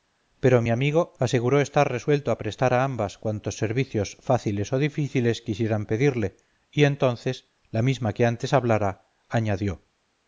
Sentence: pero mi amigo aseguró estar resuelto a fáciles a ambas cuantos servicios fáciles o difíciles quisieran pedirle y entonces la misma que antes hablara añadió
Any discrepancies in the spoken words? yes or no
yes